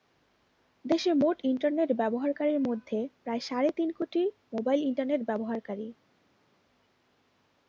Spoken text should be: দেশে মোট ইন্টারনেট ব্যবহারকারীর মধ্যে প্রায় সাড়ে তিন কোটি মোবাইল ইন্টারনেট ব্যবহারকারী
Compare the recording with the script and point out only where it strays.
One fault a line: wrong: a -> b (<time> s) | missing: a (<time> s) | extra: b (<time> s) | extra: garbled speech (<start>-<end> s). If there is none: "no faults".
no faults